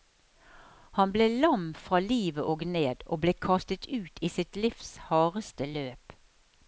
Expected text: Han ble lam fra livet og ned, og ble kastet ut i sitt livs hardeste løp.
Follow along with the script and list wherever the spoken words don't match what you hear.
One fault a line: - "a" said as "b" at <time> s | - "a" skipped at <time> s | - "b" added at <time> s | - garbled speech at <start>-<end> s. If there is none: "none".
none